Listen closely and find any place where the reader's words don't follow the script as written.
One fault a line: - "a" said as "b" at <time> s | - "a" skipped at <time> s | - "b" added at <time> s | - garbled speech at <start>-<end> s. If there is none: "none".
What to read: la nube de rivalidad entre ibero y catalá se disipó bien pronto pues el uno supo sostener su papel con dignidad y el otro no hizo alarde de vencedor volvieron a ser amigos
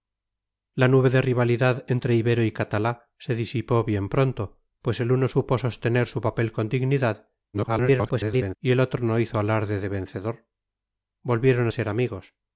- garbled speech at 7.5-8.6 s